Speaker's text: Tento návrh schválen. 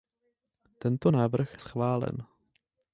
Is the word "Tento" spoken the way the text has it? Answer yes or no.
yes